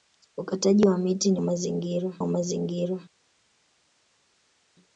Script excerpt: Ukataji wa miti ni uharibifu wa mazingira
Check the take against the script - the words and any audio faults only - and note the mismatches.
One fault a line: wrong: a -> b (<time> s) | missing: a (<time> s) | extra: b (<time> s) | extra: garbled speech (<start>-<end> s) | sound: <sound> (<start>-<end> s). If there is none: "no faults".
wrong: uharibifu -> mazingira (1.4 s)